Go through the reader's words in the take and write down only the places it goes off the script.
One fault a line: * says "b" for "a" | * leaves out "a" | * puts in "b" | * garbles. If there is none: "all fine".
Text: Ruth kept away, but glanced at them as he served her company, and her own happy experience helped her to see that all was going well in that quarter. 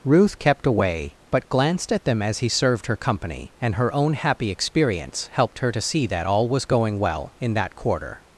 all fine